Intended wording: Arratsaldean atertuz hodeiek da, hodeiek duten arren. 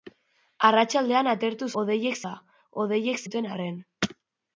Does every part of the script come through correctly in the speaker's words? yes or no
yes